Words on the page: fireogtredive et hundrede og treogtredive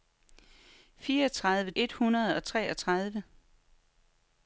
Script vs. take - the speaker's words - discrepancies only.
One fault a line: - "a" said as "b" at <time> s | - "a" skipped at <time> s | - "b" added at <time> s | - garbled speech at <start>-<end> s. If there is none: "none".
none